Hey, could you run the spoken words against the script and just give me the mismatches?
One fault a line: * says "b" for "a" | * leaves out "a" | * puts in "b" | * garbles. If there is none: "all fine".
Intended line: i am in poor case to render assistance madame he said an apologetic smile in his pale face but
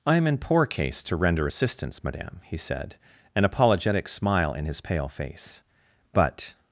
all fine